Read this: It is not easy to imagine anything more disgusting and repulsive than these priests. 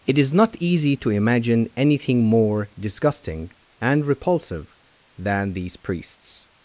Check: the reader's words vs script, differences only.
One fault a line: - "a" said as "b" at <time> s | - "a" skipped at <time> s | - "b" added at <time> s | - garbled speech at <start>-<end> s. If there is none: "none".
none